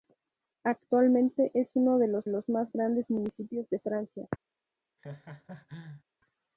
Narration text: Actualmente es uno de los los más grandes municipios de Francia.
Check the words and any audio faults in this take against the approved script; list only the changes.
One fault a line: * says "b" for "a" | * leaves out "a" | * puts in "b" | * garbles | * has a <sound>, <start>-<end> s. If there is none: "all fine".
* has a laugh, 5.0-6.0 s